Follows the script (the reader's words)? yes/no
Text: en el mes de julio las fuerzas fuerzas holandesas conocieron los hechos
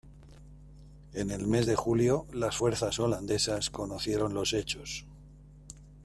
no